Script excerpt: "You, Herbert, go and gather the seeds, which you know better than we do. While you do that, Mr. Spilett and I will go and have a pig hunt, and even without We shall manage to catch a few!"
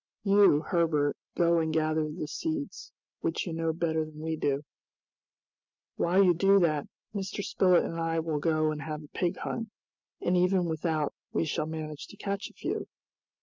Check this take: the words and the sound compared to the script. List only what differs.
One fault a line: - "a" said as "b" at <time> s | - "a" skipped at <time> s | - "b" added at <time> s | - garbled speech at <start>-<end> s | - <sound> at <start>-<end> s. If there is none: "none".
none